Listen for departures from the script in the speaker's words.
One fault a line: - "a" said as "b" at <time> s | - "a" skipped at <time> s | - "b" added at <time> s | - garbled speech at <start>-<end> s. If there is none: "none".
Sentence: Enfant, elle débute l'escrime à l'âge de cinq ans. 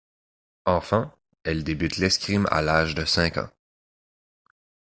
none